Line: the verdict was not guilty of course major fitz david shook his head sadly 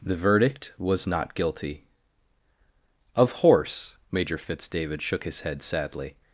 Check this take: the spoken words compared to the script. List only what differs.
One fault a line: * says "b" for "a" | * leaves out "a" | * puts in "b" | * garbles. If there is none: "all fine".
* says "horse" for "course"